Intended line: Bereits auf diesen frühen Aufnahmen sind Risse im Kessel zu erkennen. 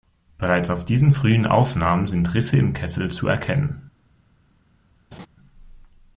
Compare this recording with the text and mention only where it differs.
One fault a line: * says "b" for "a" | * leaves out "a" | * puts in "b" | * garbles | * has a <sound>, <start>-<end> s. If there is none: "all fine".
* has a laugh, 5.1-5.3 s